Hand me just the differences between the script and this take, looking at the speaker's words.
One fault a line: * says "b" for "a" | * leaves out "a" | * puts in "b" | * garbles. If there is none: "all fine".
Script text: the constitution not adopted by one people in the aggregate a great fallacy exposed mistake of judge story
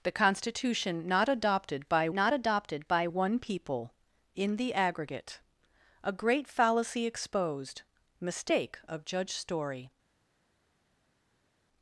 * puts in "not adopted by"